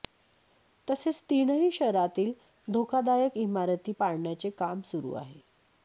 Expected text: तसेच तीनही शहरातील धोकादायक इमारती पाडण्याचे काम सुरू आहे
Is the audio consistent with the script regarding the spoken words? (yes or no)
yes